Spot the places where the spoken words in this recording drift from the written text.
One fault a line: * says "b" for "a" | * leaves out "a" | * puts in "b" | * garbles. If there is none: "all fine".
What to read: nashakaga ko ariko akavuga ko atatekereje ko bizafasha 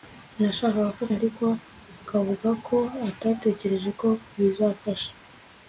all fine